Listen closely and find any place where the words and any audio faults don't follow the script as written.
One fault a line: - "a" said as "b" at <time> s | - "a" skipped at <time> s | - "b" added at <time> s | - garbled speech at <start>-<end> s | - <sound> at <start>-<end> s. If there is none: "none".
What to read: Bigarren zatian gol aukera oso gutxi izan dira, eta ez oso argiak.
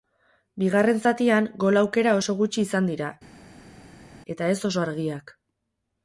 none